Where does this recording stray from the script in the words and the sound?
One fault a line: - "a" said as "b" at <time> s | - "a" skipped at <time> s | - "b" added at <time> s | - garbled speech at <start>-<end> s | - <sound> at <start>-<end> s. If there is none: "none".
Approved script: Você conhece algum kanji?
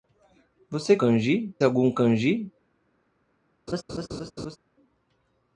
- "conhece" said as "kanji" at 1.0 s
- laugh at 3.7-4.6 s